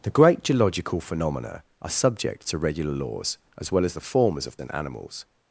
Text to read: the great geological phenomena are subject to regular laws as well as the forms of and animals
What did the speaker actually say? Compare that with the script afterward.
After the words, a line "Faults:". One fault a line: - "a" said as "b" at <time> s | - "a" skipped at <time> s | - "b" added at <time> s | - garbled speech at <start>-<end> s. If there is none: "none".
the great geological phenomena are subject to regular laws as well as the forms of and animals
Faults:
none